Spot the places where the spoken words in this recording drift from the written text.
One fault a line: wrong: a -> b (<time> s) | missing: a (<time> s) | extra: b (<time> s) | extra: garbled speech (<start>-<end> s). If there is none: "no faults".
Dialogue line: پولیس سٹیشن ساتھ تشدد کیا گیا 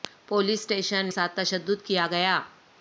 no faults